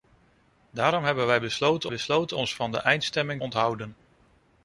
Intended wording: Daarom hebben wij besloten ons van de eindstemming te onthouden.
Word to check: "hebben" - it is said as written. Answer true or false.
true